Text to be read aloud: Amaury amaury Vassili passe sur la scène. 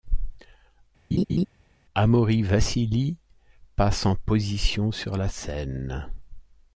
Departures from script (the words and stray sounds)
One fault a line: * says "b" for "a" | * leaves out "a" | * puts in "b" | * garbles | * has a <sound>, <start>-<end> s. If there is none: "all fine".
* has a laugh, 1.1-1.5 s
* leaves out "amaury"
* puts in "en position"